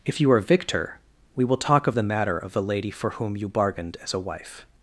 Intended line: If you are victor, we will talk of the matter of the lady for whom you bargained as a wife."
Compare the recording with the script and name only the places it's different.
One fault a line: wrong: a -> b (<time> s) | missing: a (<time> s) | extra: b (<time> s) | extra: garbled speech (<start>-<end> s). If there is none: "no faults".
no faults